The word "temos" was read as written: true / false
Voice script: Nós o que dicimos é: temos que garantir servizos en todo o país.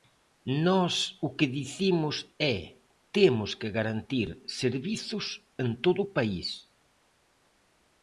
true